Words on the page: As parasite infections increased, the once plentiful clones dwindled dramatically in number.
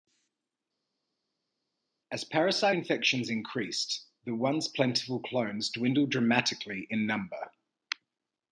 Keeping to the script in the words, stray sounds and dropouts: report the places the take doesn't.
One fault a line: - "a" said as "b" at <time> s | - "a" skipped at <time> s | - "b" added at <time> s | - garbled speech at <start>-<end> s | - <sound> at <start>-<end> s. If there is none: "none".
none